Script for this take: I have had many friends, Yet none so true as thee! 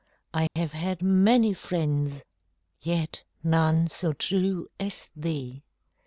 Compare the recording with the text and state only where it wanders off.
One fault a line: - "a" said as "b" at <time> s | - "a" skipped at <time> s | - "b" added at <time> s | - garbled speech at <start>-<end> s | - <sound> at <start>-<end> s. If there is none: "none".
- dropout at 0.5-0.6 s